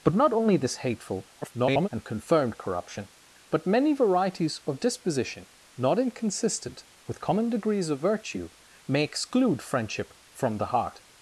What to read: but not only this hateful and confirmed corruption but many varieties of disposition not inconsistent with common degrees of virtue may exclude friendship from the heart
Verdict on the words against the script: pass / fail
fail